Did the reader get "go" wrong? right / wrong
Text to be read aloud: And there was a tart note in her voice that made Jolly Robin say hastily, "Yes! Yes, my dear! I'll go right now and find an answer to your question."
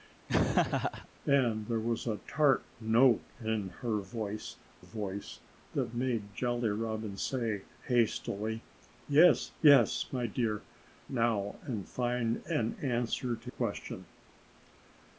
wrong